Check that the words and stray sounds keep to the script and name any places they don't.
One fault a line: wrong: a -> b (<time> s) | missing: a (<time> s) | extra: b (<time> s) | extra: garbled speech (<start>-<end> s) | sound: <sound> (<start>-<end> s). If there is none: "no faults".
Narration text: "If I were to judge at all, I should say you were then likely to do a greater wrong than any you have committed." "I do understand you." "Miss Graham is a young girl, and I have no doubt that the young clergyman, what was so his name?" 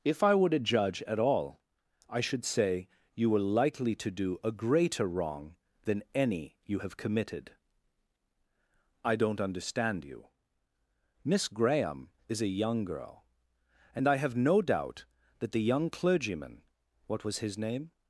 missing: then (3.5 s)
wrong: do -> don't (9.2 s)
missing: so (17.4 s)